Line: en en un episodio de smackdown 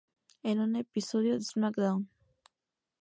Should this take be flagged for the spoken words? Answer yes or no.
yes